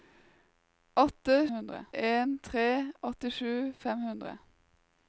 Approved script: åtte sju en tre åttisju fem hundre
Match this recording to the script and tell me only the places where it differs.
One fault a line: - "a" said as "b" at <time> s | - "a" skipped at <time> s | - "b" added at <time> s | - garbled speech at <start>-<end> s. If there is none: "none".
- "sju" said as "hundre" at 1.6 s